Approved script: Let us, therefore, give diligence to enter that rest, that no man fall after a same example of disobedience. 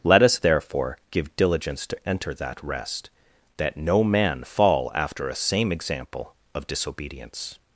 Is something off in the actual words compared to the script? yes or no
no